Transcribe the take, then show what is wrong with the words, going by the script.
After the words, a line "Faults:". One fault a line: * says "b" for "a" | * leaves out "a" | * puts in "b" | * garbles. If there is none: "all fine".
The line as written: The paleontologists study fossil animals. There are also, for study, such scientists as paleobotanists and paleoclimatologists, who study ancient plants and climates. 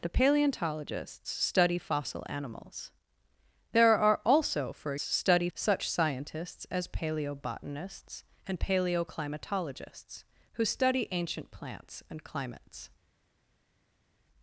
The paleontologists study fossil animals. There are also, for study, such scientists as paleobotanists and paleoclimatologists, who study ancient plants and climates.
Faults:
all fine